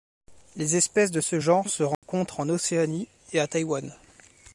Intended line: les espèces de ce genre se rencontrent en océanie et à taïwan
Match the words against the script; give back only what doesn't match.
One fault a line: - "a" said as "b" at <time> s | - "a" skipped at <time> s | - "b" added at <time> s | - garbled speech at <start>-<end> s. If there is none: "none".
none